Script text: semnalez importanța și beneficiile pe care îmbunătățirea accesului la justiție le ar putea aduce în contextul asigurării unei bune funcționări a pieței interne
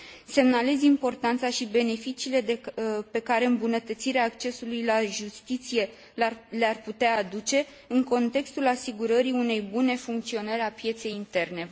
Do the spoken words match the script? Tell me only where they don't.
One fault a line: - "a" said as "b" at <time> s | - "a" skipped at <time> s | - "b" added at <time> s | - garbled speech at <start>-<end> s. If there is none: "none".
none